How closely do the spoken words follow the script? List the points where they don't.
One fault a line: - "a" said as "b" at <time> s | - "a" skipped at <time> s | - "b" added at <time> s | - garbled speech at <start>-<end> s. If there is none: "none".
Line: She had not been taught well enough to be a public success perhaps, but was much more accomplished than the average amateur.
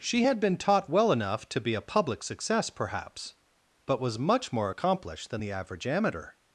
- "not" skipped at 0.4 s